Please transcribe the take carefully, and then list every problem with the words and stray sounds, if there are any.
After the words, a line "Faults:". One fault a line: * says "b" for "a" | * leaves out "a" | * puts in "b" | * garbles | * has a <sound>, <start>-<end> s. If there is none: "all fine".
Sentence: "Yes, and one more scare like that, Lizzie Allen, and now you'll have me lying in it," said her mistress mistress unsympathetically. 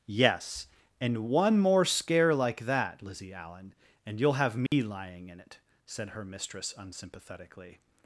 "Yes, and one more scare like that, Lizzie Allen, and you'll have me lying in it," said her mistress unsympathetically.
Faults:
* leaves out "now"
* has a dropout, 4.7-4.7 s
* leaves out "mistress"